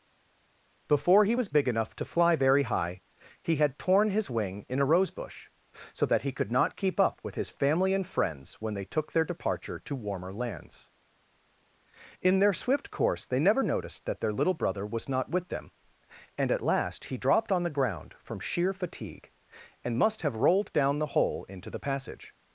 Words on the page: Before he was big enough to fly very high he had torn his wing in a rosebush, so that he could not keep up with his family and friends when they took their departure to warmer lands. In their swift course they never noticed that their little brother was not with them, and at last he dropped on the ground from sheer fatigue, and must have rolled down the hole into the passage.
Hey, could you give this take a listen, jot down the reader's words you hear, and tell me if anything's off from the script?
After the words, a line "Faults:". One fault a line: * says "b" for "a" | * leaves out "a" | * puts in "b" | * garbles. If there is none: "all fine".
Before he was big enough to fly very high he had torn his wing in a rosebush, so that he could not keep up with his family and friends when they took their departure to warmer lands. In their swift course they never noticed that their little brother was not with them, and at last he dropped on the ground from sheer fatigue, and must have rolled down the hole into the passage.
Faults:
all fine